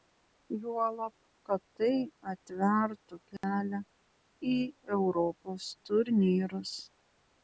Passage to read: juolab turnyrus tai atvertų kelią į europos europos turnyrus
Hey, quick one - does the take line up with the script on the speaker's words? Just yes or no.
no